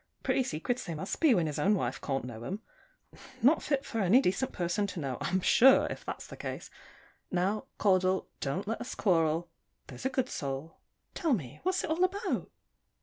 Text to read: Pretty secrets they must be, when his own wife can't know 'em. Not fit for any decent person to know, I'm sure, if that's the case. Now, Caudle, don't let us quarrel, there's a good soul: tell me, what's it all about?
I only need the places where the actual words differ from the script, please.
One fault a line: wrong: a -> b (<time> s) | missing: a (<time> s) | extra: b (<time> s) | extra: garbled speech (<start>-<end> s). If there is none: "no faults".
no faults